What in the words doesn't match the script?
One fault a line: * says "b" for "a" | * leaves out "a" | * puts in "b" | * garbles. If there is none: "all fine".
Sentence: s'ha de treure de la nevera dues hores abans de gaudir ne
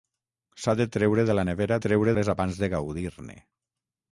* says "treure" for "dues"